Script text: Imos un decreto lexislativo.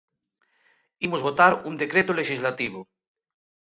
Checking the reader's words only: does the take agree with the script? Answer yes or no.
no